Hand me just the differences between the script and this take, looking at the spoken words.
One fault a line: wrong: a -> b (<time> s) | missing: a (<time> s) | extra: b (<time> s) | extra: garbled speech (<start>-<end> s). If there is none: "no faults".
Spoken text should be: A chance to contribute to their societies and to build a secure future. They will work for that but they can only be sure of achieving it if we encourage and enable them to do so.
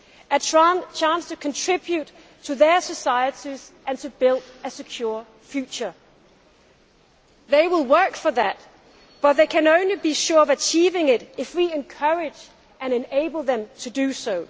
no faults